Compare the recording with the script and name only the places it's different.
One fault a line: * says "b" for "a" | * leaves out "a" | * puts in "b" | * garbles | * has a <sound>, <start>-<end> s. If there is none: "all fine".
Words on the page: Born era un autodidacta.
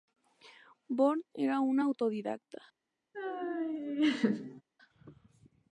* has a laugh, 3.1-4.6 s